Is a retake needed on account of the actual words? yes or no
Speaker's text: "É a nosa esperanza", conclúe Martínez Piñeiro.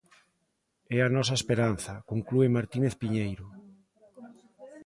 no